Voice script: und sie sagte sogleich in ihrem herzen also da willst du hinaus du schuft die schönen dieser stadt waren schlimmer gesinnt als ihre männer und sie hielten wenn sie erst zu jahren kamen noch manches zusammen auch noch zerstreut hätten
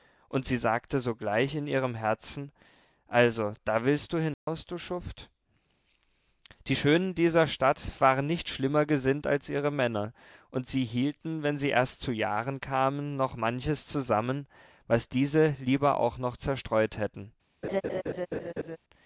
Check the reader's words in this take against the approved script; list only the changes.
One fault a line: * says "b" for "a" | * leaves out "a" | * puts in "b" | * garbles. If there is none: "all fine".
* puts in "nicht"
* puts in "was diese lieber"